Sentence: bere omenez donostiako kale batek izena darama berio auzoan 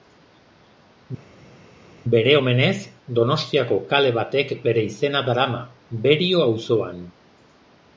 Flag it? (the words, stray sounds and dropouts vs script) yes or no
yes